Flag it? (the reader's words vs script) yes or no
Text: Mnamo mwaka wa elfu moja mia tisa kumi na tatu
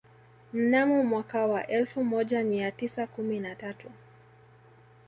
no